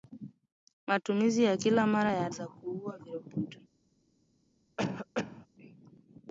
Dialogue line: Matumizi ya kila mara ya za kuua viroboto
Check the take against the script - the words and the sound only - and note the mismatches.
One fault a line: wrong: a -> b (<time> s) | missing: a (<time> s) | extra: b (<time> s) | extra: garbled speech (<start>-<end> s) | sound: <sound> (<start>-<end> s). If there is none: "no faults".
sound: cough (4.8-5.5 s)